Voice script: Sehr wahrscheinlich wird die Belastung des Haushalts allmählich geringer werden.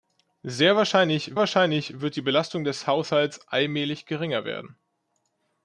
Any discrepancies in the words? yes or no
yes